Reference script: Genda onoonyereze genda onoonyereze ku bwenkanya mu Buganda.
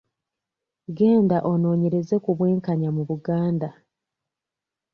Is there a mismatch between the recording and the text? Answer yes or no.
yes